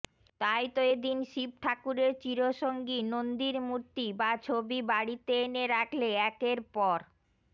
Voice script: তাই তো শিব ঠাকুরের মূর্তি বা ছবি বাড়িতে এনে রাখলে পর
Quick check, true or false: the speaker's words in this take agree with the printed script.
false